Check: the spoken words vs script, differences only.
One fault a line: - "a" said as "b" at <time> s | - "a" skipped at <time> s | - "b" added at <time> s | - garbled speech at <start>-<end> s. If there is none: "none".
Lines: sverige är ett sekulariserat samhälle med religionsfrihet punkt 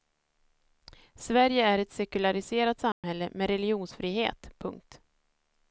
none